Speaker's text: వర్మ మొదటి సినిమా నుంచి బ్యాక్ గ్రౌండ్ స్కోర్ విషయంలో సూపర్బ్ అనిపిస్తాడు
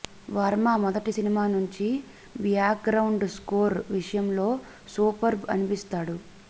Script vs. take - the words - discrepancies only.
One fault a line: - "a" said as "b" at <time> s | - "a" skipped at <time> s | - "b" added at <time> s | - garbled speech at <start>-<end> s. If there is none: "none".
none